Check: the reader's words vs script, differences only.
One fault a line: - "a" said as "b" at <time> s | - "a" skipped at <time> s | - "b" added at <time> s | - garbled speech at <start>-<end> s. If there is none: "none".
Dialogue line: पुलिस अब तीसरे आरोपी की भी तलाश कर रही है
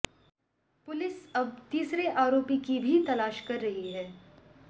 none